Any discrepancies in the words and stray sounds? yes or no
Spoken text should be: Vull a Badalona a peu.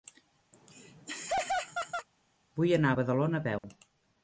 yes